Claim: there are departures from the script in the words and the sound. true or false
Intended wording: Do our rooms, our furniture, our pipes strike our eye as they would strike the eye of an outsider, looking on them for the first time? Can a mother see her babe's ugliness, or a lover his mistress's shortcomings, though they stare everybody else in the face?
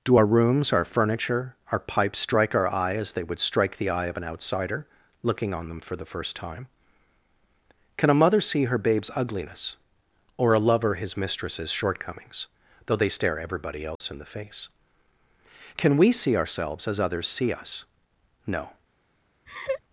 true